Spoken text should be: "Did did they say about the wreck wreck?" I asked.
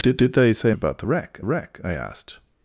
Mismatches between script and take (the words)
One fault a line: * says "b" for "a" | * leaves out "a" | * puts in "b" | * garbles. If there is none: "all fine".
all fine